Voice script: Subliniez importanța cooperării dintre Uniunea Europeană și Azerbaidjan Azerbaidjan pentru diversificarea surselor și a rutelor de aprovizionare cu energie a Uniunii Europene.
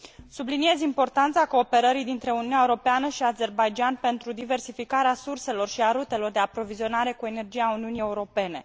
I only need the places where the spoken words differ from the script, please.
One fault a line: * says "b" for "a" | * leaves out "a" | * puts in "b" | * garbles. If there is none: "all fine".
* leaves out "Azerbaidjan"